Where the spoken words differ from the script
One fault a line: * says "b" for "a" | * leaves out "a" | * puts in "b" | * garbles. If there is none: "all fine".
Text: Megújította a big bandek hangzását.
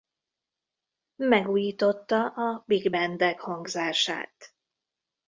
all fine